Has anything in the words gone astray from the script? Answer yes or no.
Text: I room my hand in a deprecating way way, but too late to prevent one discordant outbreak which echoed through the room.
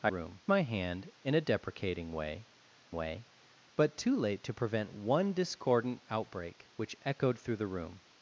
no